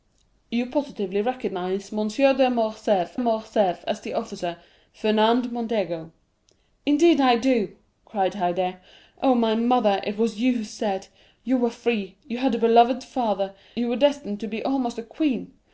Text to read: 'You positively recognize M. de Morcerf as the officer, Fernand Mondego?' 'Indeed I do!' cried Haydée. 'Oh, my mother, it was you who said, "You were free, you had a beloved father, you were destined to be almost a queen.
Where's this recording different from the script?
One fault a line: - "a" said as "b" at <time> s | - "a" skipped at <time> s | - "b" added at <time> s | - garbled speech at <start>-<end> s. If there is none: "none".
- "Morcerf" added at 3.2 s